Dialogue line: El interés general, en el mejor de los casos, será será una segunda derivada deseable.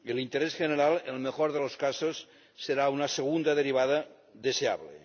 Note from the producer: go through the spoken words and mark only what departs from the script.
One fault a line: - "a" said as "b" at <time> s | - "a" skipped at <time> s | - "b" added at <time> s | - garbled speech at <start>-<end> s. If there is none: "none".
- "será" skipped at 2.9 s